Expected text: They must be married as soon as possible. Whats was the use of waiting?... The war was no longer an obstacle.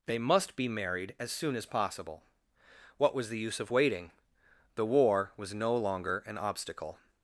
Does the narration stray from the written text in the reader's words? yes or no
yes